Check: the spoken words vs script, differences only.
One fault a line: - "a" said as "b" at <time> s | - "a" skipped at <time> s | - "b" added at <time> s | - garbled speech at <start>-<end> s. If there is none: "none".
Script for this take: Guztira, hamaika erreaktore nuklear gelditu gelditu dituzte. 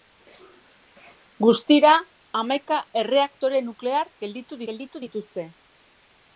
none